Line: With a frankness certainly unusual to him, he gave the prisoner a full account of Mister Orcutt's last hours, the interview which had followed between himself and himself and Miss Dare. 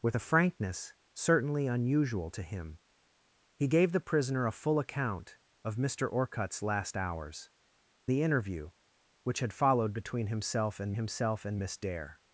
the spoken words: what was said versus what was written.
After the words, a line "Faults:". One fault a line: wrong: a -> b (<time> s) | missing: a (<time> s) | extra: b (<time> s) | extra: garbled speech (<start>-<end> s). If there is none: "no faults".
With a frankness certainly unusual to him, he gave the prisoner a full account of Mister Orcutt's last hours, the interview which had followed between himself and himself and Miss Dare.
Faults:
no faults